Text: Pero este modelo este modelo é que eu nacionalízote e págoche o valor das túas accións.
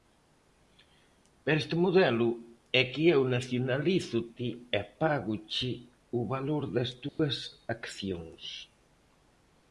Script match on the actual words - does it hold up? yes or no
no